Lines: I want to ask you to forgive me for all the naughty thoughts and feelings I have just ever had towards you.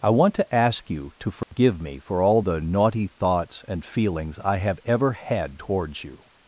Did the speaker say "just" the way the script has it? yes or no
no